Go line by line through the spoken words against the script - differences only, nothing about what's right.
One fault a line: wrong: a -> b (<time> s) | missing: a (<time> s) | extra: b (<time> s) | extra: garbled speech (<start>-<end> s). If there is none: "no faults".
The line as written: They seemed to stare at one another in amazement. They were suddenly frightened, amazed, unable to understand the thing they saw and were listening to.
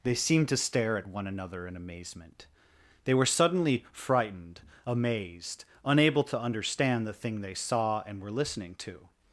no faults